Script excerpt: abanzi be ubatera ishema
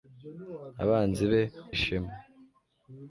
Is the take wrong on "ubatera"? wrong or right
wrong